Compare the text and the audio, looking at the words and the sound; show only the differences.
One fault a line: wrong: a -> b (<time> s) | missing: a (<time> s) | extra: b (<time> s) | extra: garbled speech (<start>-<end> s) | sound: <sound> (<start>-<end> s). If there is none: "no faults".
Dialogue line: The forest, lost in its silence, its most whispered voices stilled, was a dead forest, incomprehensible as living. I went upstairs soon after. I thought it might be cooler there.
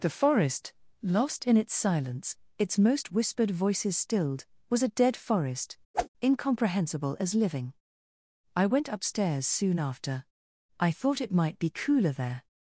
sound: whoosh (5.9-6.1 s)